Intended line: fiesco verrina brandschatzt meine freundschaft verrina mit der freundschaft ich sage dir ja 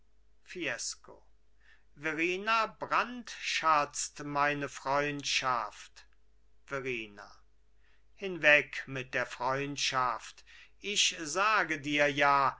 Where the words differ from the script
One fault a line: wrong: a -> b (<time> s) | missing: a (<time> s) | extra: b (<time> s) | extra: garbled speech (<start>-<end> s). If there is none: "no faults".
extra: hinweg (8.1 s)